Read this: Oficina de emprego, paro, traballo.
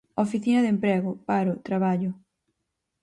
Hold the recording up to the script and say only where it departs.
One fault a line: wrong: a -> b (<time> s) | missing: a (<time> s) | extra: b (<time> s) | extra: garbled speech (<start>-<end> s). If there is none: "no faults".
no faults